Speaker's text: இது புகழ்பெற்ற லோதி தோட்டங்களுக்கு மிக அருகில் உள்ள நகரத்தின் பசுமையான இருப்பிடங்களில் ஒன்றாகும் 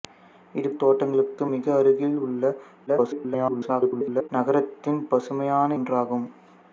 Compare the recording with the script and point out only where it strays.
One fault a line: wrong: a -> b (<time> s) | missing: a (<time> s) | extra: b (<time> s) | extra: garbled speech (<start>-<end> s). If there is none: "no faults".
missing: புகழ்பெற்ற லோதி (0.7 s)
extra: garbled speech (2.9-4.3 s)
missing: இருப்பிடங்களில் (5.8 s)